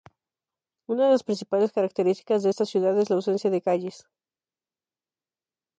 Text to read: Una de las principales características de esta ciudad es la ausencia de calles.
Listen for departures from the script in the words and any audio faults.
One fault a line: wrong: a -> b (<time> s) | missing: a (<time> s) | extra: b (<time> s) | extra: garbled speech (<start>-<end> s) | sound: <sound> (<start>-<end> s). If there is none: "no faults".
no faults